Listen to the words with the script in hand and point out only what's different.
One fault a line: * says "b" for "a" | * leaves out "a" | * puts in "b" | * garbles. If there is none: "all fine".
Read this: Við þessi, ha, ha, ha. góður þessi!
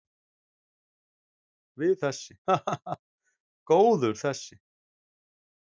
all fine